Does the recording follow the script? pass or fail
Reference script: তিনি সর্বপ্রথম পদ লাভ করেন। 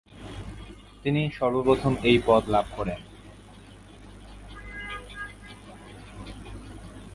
fail